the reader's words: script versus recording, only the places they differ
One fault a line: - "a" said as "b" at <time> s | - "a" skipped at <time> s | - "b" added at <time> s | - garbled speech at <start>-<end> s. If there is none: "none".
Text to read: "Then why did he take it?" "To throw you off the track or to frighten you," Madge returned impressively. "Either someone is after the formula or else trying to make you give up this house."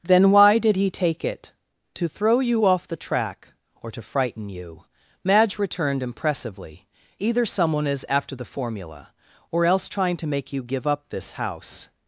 none